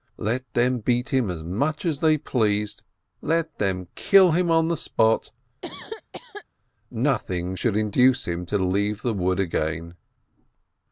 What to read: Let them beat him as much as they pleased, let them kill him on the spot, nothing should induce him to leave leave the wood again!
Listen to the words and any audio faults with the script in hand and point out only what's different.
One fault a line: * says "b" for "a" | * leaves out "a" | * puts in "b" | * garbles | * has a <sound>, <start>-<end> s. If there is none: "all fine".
* has a cough, 5.6-6.5 s
* leaves out "leave"